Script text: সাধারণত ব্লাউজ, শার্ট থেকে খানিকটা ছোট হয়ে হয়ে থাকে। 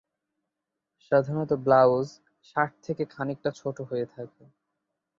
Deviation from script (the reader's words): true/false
true